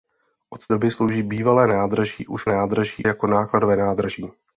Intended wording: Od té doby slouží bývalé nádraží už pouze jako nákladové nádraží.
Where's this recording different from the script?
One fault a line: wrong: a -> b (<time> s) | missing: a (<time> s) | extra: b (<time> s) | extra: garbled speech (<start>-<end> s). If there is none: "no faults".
missing: té (0.7 s)
wrong: pouze -> nádraží (2.5 s)